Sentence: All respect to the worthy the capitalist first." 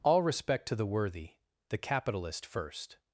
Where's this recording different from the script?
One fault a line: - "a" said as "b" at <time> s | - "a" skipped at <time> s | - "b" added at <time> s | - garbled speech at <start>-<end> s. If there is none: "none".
none